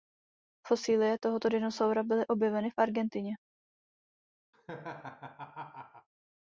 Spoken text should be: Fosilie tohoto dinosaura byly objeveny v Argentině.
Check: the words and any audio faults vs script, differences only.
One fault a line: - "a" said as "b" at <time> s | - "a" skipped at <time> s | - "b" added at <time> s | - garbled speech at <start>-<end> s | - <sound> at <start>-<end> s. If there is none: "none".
- laugh at 4.5-6.1 s